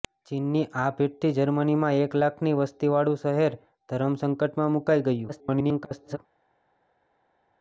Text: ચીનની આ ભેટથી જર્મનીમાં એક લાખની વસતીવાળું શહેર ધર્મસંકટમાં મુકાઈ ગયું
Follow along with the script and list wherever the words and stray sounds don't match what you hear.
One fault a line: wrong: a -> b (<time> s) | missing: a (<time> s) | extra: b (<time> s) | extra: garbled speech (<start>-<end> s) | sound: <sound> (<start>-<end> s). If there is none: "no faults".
extra: garbled speech (5.3-6.2 s)